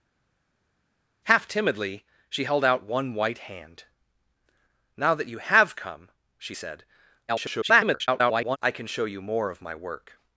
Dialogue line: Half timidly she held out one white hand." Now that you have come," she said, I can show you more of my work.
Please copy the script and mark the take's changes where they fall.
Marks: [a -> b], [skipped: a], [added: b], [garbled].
Half timidly she held out one white hand." Now that you have come," she said, [garbled] I can show you more of my work.